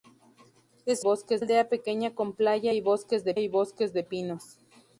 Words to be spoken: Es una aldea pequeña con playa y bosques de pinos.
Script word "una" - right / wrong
wrong